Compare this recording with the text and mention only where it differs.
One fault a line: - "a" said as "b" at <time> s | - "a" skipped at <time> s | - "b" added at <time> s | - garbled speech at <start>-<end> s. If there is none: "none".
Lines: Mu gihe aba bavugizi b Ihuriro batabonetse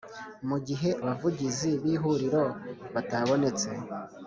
- "aba" skipped at 0.9 s